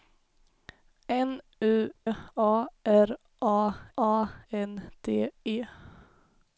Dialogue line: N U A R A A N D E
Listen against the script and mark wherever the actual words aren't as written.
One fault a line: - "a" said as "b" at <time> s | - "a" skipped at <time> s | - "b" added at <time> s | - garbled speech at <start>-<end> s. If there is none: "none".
none